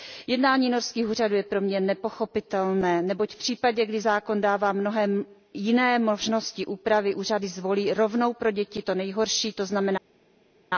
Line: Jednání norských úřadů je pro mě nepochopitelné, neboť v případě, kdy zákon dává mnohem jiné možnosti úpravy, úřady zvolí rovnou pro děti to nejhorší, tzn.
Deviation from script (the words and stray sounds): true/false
false